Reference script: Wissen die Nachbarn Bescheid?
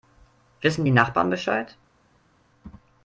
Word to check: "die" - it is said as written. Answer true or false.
true